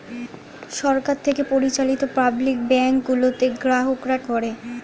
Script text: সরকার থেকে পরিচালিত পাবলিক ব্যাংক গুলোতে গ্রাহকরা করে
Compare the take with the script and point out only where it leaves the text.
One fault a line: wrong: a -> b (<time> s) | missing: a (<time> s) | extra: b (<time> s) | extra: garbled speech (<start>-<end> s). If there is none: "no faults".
no faults